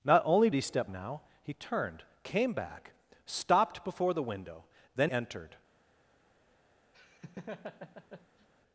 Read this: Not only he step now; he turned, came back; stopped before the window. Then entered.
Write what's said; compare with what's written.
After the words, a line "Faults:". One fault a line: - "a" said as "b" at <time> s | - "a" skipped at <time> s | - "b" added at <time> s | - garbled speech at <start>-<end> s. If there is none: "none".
Not only he step now; he turned, came back; stopped before the window. Then entered.
Faults:
none